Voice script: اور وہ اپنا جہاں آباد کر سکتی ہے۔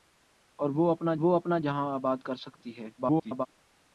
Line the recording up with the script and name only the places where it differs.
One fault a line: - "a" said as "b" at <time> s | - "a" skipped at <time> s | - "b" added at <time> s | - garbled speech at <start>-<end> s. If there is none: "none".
- "وہ اپنا" added at 1.1 s
- garbled speech at 3.0-3.5 s